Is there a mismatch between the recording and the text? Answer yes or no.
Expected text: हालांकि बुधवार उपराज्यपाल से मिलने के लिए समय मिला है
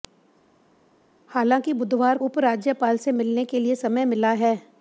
no